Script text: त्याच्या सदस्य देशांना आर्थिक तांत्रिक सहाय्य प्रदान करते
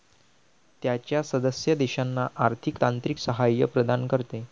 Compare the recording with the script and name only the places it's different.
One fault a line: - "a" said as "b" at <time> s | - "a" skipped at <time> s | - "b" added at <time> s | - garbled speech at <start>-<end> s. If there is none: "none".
none